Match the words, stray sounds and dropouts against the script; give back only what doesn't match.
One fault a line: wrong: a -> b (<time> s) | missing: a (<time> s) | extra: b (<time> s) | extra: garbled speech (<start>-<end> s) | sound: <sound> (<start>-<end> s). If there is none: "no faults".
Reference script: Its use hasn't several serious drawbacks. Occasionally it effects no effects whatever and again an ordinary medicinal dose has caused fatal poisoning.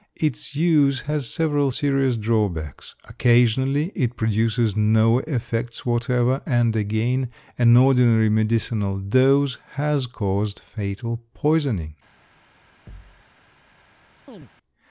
wrong: hasn't -> has (1.0 s)
wrong: effects -> produces (4.1 s)
sound: thud (12.9-13.2 s)
sound: chirp (14.3-14.5 s)